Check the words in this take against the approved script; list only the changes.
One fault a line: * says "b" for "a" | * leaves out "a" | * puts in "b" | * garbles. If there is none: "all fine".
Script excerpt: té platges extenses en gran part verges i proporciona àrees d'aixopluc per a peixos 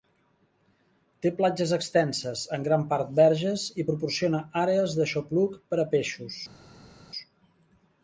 all fine